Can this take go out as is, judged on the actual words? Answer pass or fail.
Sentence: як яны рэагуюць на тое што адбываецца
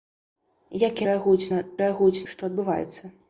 fail